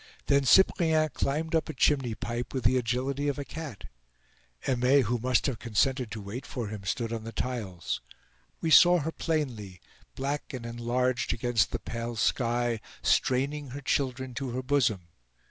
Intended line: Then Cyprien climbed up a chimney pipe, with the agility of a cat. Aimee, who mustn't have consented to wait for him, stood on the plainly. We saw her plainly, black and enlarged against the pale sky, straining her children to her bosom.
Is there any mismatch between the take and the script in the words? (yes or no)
yes